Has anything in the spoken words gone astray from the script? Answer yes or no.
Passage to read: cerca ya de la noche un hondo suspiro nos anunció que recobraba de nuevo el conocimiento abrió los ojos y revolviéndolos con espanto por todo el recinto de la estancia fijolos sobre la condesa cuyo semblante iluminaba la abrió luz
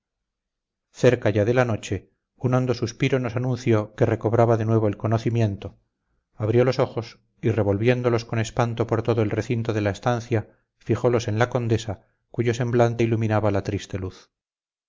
yes